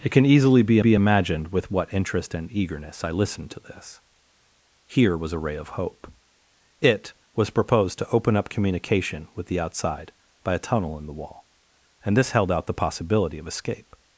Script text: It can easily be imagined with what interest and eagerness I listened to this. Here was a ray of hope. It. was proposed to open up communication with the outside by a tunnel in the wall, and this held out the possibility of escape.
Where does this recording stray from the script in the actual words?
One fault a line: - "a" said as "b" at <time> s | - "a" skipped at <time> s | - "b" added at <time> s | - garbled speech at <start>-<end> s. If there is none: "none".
- "be" added at 0.8 s